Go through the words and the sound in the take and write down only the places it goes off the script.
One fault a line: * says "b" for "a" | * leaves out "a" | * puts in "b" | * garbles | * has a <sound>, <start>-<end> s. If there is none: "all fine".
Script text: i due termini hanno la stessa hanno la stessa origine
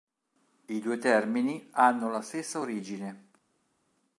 * leaves out "hanno la stessa"